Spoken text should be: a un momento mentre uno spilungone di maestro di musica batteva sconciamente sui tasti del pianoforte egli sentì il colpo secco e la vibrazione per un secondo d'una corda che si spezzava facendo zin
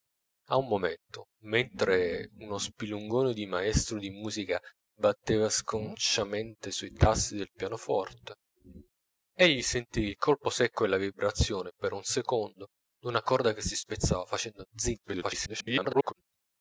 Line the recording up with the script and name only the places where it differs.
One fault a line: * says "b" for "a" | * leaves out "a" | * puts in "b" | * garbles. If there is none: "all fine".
* garbles